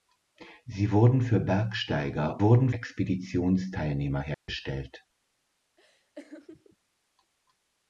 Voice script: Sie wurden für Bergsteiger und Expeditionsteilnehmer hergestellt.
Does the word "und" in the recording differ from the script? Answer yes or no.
yes